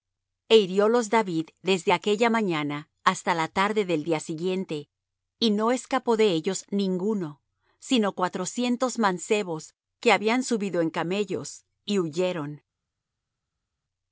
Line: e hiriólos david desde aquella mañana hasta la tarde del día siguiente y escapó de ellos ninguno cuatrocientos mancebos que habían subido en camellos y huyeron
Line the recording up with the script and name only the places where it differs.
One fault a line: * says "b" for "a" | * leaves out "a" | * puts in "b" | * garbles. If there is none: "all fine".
* puts in "no"
* puts in "sino"